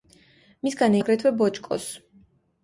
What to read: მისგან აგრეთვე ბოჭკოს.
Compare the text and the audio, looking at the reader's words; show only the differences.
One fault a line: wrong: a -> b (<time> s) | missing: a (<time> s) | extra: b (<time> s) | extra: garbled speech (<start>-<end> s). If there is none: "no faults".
no faults